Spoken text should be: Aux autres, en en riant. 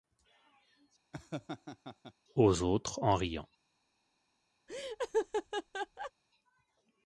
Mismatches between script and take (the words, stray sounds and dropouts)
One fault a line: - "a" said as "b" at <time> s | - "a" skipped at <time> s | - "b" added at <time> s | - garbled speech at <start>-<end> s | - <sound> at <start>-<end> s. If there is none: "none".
- laugh at 1.1-2.1 s
- "en" skipped at 3.1 s
- laugh at 4.7-6.1 s